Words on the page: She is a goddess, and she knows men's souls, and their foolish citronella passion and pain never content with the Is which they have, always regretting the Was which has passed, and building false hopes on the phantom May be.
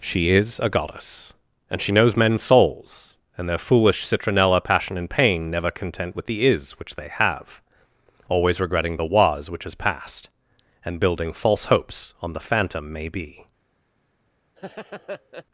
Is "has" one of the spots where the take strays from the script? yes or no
no